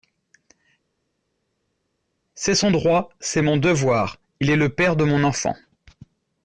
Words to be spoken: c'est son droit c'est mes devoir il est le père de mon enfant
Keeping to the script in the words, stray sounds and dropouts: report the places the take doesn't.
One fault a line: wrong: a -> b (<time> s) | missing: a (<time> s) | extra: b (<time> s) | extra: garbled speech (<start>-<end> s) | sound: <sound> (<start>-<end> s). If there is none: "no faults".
wrong: mes -> mon (3.4 s)